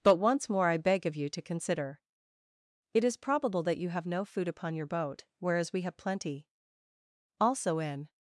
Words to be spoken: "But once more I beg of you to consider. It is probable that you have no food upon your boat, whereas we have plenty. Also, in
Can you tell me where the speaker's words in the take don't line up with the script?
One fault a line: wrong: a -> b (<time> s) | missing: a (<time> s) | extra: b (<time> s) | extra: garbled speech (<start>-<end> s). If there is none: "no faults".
no faults